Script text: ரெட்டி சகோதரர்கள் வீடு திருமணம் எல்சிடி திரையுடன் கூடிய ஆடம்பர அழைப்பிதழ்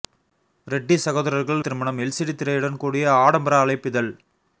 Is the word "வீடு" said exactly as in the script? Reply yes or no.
no